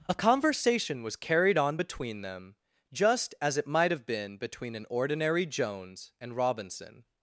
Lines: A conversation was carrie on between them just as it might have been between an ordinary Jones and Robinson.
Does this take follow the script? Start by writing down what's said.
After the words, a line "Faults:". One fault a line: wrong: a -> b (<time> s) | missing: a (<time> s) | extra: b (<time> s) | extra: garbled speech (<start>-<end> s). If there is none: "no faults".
A conversation was carried on between them just as it might have been between an ordinary Jones and Robinson.
Faults:
wrong: carrie -> carried (1.1 s)